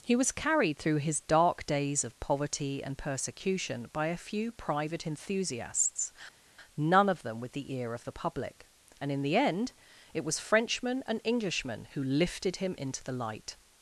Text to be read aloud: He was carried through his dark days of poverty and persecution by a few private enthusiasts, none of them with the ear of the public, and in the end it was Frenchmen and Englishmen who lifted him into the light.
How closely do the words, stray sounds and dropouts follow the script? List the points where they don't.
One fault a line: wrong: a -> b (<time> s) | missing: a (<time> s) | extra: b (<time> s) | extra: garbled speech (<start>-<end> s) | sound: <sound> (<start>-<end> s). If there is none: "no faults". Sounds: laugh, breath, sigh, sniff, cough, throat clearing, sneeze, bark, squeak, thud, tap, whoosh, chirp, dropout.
no faults